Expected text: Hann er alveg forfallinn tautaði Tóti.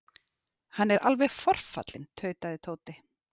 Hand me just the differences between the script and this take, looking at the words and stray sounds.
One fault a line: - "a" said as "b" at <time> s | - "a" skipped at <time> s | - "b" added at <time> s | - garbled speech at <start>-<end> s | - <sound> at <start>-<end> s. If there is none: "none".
none